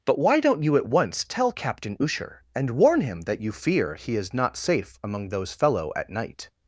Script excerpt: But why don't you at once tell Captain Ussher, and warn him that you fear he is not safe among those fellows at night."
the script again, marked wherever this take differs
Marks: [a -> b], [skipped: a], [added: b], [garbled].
But why don't you at once tell Captain Ussher, and warn him that you fear he is not safe among those [fellows -> fellow] at night."